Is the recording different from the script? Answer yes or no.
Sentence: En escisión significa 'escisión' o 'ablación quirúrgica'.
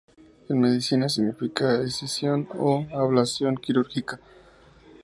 yes